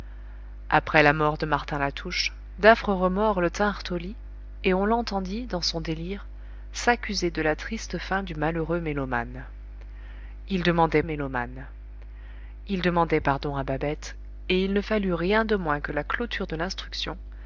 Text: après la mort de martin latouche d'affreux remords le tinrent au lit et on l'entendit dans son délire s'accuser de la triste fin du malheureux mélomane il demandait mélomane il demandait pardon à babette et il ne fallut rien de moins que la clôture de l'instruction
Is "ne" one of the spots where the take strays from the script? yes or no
no